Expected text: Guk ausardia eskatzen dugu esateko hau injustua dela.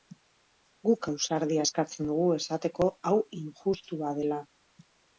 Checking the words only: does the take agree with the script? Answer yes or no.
yes